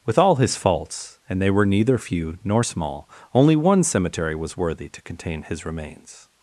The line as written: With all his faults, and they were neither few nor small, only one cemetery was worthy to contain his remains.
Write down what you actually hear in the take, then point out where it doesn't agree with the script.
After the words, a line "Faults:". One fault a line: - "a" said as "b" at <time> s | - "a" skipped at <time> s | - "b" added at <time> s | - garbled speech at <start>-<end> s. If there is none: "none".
With all his faults, and they were neither few nor small, only one cemetery was worthy to contain his remains.
Faults:
none